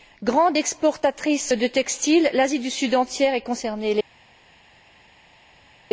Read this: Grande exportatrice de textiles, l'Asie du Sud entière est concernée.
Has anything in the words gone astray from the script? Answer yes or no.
no